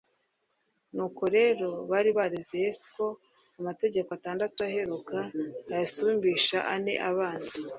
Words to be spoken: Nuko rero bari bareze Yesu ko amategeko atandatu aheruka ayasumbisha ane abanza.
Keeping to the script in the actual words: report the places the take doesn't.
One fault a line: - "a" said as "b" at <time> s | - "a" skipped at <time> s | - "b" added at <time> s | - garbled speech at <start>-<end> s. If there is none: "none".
none